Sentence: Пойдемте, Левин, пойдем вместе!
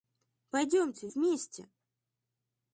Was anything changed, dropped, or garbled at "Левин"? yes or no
yes